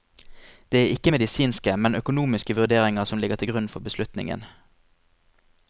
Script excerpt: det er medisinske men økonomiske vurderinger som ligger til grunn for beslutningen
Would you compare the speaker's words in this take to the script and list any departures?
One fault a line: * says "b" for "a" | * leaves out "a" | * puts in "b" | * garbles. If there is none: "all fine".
* puts in "ikke"